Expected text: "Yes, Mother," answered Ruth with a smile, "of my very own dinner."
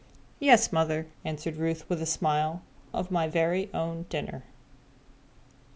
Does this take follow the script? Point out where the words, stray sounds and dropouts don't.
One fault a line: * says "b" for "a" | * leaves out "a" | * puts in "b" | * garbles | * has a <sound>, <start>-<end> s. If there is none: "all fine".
all fine